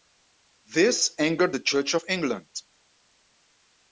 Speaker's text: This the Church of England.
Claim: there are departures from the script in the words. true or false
true